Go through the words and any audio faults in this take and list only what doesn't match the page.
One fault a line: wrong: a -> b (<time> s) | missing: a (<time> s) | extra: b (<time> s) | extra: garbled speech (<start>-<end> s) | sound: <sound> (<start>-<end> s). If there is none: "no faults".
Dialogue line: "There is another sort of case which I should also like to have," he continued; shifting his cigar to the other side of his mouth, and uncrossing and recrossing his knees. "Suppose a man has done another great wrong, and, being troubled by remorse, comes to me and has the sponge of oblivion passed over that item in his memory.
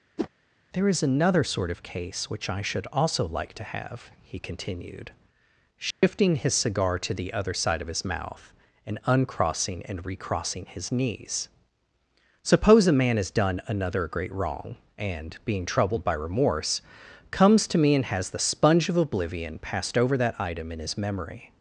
sound: whoosh (0.2-0.3 s)
sound: dropout (5.9-6.0 s)